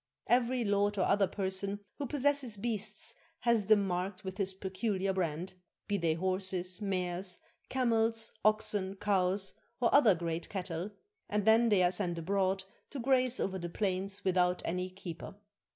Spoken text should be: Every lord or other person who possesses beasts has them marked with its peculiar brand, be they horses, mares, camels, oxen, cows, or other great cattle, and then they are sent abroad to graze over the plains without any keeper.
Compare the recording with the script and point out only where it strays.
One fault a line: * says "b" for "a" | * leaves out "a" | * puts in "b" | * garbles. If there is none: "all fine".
* says "his" for "its"